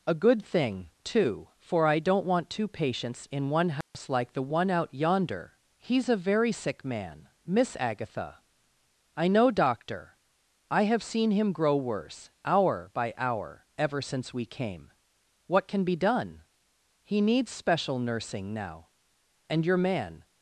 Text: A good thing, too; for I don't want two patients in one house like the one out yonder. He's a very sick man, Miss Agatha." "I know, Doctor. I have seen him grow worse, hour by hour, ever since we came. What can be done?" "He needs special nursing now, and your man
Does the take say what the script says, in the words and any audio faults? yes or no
no